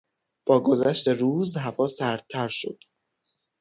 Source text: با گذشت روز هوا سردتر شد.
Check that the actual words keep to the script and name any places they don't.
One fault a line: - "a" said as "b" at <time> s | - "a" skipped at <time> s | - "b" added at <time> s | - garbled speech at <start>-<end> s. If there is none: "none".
none